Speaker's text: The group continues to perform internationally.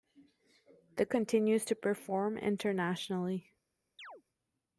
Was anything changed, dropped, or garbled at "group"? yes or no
yes